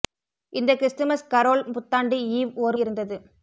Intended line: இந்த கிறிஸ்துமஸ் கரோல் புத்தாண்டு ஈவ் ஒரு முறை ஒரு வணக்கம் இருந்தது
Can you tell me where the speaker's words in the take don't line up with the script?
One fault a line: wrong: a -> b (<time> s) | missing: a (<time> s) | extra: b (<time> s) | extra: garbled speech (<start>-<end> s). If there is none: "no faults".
missing: முறை ஒரு வணக்கம் (2.8 s)